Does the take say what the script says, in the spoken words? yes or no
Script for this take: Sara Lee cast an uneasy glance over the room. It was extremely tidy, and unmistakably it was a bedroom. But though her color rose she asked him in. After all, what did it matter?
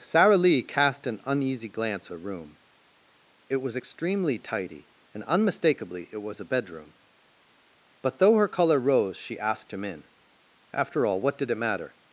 no